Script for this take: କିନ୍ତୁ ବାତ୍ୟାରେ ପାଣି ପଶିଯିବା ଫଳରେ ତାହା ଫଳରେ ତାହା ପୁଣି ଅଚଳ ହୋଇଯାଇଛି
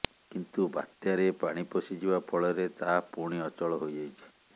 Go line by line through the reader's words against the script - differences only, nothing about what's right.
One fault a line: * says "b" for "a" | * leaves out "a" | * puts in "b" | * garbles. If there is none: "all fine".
* leaves out "ଫଳରେ ତାହା"